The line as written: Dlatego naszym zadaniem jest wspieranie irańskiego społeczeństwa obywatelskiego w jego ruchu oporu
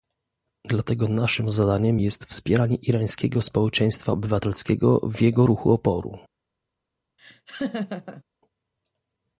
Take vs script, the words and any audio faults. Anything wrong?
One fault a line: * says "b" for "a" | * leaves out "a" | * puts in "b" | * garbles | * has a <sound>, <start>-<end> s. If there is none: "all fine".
* has a laugh, 7.2-8.2 s